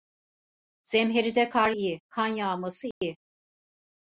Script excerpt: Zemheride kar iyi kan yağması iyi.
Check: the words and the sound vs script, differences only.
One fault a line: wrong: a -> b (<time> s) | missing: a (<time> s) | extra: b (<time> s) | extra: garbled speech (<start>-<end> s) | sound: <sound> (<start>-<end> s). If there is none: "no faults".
sound: dropout (2.9-3.0 s)